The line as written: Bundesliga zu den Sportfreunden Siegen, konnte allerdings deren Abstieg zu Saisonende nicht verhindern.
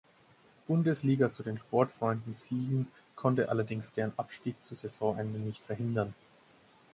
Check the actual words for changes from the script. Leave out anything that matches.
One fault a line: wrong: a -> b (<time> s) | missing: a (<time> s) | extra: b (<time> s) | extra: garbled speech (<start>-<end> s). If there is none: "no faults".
no faults